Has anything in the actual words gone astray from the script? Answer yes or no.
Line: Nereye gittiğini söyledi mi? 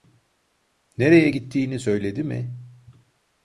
no